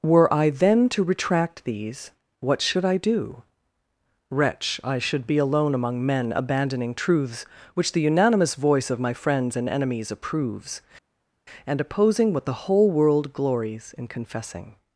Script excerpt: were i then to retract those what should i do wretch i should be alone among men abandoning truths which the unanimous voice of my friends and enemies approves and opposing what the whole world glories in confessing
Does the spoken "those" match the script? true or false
false